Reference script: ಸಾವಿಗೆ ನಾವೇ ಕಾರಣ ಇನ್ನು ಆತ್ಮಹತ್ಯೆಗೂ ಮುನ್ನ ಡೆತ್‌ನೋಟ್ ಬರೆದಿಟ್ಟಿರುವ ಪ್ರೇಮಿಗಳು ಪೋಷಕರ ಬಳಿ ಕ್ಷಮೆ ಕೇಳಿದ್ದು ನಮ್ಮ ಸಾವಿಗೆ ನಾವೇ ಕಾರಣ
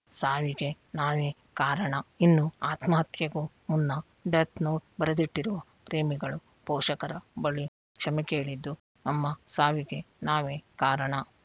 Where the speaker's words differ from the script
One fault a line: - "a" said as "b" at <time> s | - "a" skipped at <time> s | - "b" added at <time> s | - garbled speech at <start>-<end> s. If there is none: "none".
none